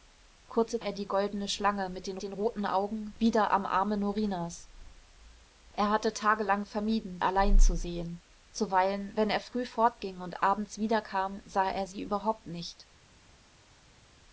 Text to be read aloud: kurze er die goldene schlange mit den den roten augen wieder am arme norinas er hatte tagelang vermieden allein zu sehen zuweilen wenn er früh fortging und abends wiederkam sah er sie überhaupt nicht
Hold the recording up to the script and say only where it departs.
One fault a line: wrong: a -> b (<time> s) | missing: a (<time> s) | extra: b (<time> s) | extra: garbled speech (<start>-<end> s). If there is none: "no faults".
no faults